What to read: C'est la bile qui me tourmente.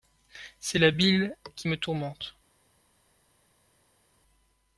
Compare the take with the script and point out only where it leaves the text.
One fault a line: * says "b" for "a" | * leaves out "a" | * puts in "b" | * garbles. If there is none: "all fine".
all fine